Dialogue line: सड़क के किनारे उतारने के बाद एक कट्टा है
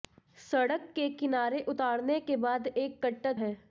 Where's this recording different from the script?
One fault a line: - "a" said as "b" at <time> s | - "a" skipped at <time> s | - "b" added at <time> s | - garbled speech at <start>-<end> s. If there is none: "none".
none